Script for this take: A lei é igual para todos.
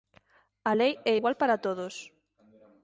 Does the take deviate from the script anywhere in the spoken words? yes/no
no